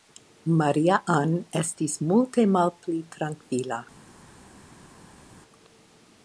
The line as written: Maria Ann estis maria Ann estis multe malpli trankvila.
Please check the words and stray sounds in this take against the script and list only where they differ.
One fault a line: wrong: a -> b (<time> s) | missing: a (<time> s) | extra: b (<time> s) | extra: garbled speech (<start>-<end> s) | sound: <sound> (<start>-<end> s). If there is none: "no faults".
missing: maria Ann estis (2.0 s)